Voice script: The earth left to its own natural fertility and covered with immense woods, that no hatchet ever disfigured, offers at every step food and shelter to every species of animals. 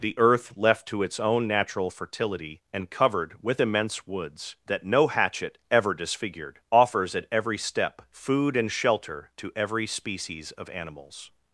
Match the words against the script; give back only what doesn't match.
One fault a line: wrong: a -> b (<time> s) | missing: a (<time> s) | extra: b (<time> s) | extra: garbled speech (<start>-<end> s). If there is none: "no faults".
no faults